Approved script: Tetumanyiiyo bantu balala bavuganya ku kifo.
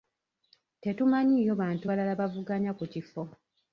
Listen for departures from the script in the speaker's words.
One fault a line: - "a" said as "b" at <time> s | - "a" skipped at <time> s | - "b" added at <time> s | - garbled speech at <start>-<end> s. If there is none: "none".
none